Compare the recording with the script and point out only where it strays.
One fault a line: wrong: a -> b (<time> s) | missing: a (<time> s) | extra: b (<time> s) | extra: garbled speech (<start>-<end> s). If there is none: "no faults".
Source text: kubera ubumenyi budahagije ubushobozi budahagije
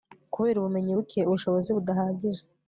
wrong: budahagije -> buke (1.0 s)